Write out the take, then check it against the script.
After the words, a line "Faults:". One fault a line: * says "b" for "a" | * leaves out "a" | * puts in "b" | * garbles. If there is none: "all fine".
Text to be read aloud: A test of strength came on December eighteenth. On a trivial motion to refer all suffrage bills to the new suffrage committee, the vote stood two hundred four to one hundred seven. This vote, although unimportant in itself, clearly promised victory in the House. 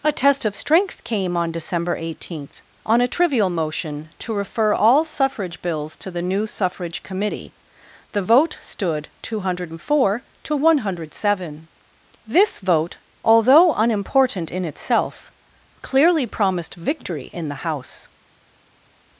A test of strength came on December eighteenth. On a trivial motion to refer all suffrage bills to the new suffrage committee, the vote stood two hundred four to one hundred seven. This vote, although unimportant in itself, clearly promised victory in the House.
Faults:
all fine